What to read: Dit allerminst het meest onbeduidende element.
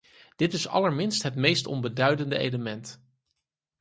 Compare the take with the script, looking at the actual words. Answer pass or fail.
fail